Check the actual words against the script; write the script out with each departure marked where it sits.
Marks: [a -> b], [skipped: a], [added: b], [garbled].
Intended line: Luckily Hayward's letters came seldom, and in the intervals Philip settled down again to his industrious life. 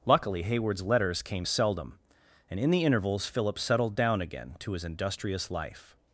Luckily Hayward's letters came seldom, and in the intervals Philip settled down again to his industrious life.